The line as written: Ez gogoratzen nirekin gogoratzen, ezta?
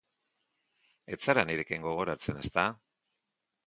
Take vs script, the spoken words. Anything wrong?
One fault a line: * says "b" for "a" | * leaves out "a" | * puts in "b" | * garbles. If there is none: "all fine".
* says "zara" for "gogoratzen"